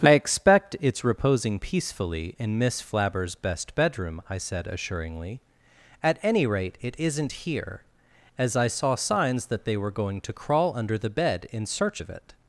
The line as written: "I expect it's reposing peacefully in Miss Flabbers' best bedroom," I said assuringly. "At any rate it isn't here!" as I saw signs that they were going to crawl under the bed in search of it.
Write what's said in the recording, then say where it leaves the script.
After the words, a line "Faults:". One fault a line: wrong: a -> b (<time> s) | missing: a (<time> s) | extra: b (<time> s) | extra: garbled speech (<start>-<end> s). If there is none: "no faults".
"I expect it's reposing peacefully in Miss Flabbers' best bedroom," I said assuringly. "At any rate it isn't here!" as I saw signs that they were going to crawl under the bed in search of it.
Faults:
no faults